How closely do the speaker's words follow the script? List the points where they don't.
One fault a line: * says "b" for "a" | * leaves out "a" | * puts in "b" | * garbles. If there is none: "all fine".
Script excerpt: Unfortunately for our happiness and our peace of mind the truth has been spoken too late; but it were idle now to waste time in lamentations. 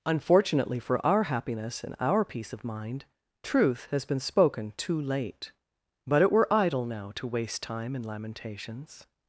* leaves out "the"